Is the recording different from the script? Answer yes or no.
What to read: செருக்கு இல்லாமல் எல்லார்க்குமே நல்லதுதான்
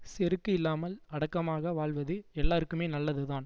yes